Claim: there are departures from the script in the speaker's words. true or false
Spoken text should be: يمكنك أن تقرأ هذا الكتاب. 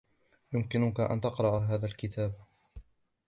false